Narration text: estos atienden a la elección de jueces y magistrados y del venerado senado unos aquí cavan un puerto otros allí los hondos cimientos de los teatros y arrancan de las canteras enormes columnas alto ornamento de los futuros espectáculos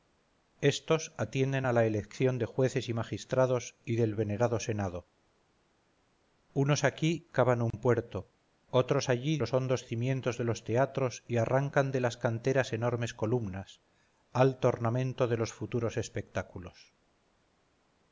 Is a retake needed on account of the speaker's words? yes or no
no